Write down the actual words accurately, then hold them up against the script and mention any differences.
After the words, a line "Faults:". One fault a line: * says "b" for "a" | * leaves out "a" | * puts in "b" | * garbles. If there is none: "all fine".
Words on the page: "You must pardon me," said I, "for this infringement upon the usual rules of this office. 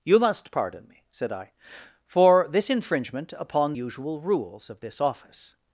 "You must pardon me," said I, "for this infringement upon usual rules of this office.
Faults:
* leaves out "the"